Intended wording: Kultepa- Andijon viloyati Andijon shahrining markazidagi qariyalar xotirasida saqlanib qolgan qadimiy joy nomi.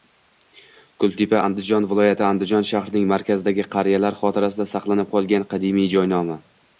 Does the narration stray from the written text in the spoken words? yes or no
no